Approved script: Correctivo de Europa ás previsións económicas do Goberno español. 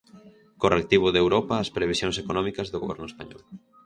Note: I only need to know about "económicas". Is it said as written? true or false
true